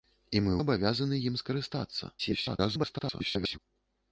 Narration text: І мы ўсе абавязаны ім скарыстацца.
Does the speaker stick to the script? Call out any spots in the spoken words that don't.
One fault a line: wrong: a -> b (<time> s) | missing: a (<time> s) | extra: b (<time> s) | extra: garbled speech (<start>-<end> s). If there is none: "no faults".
missing: ўсе (0.5 s)
extra: garbled speech (2.2-3.6 s)